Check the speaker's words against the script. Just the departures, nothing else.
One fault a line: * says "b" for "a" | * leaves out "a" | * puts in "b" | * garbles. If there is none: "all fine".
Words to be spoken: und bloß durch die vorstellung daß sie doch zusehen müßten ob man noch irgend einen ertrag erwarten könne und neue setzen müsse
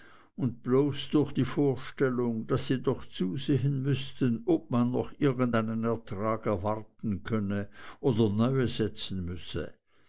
* says "oder" for "und"